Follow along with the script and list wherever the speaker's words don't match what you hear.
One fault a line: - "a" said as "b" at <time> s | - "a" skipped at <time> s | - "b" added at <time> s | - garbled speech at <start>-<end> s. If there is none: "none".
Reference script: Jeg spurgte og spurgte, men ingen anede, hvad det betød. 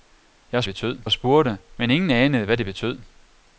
- "spurgte" said as "betød" at 0.6 s